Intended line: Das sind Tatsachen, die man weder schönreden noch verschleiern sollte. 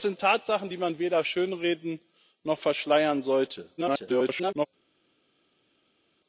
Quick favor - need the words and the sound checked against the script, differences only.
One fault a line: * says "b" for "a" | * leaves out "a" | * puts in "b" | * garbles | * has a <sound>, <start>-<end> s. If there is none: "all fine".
* garbles